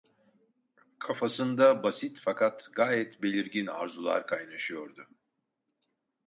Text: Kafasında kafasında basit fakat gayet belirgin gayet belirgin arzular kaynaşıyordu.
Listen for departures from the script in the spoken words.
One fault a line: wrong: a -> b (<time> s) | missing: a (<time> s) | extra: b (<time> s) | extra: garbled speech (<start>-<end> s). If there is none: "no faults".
missing: kafasında (1.8 s)
missing: gayet belirgin (3.7 s)